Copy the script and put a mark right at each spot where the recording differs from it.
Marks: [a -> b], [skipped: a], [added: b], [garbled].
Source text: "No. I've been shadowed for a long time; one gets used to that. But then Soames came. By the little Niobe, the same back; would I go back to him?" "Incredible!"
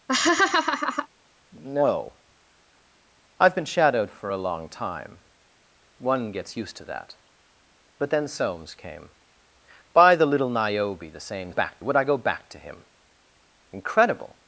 "No. I've been shadowed for a long time; one gets used to that. But then Soames came. By the little Niobe, the same back; would I go back to him?" "Incredible!"